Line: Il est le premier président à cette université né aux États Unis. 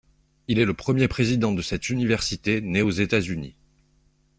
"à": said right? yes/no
no